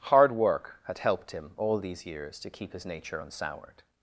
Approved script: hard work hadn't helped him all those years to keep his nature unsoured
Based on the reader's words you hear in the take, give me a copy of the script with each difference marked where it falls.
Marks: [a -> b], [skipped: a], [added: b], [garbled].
hard work [hadn't -> had] helped him all [those -> these] years to keep his nature unsoured